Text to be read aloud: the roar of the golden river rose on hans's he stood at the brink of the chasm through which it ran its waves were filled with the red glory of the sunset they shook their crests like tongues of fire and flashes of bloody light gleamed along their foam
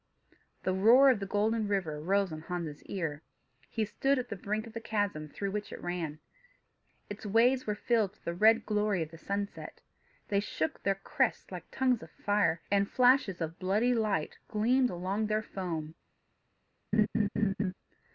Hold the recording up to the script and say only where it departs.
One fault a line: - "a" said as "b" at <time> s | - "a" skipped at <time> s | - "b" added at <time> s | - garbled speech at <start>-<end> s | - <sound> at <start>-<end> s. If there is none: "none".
- "ear" added at 2.9 s
- laugh at 16.9-17.7 s